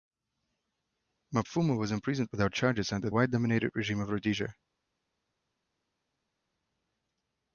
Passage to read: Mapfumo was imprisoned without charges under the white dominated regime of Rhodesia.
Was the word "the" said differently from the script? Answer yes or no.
yes